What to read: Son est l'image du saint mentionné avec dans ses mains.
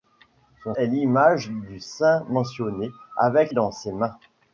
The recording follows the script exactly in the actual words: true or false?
true